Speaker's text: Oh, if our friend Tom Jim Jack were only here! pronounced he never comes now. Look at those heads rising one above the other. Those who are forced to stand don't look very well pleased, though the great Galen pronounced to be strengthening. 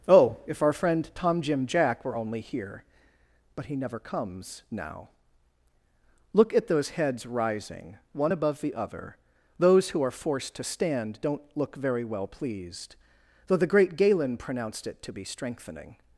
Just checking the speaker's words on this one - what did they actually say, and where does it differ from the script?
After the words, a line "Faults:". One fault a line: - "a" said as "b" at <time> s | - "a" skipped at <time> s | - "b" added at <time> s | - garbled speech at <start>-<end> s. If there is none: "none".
Oh, if our friend Tom Jim Jack were only here! but he never comes now. Look at those heads rising one above the other. Those who are forced to stand don't look very well pleased, though the great Galen pronounced it to be strengthening.
Faults:
- "pronounced" said as "but" at 3.5 s
- "it" added at 14.9 s